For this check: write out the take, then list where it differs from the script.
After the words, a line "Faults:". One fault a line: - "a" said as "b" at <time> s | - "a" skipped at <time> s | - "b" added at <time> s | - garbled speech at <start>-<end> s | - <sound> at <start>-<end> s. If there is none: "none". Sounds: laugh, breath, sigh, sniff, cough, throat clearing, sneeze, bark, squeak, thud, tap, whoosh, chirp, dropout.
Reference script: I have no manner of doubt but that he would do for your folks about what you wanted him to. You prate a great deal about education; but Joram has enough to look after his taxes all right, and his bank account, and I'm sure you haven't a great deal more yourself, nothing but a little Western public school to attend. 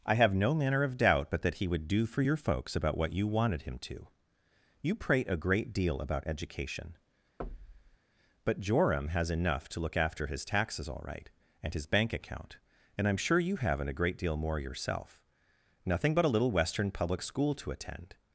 I have no manner of doubt but that he would do for your folks about what you wanted him to. You prate a great deal about education; but Joram has enough to look after his taxes all right, and his bank account, and I'm sure you haven't a great deal more yourself, nothing but a little Western public school to attend.
Faults:
- thud at 7.4-8.0 s